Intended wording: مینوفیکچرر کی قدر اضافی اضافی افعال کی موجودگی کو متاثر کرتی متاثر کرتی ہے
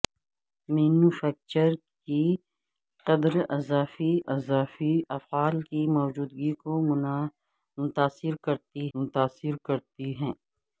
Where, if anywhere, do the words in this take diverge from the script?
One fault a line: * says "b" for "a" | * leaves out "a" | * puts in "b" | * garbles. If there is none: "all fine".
all fine